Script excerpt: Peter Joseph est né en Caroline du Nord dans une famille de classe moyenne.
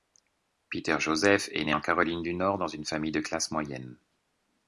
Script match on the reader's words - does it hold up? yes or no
yes